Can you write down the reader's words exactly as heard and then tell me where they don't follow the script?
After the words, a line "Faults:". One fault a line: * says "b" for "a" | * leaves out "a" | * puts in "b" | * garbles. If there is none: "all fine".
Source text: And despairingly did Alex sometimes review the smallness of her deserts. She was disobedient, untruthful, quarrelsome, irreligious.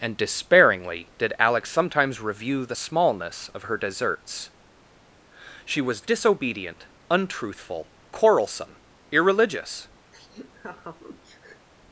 And despairingly did Alex sometimes review the smallness of her deserts. She was disobedient, untruthful, quarrelsome, irreligious.
Faults:
all fine